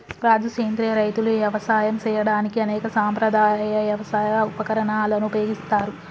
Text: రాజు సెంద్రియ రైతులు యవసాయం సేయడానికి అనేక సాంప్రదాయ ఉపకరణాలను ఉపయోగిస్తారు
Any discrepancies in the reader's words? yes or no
yes